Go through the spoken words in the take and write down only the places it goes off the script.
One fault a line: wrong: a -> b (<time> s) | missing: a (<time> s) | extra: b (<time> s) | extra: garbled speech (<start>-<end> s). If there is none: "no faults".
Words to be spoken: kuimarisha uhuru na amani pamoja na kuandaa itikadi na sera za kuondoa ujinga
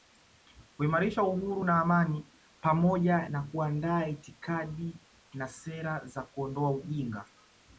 no faults